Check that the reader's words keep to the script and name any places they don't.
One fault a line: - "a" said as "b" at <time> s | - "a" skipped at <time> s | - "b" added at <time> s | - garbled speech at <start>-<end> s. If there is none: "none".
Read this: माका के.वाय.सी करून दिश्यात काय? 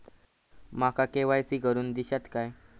none